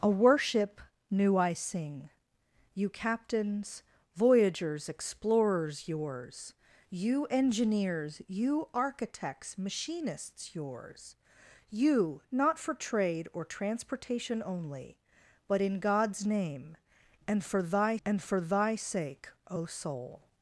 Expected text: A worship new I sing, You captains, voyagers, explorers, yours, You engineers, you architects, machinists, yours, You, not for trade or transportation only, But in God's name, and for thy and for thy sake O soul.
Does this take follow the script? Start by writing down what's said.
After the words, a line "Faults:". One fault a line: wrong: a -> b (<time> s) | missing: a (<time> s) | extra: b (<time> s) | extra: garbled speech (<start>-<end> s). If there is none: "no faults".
A worship new I sing, You captains, voyagers, explorers, yours, You engineers, you architects, machinists, yours, You, not for trade or transportation only, But in God's name, and for thy and for thy sake O soul.
Faults:
no faults